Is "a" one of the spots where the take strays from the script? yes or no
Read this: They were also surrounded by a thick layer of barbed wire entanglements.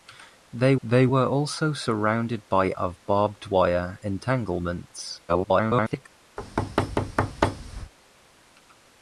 yes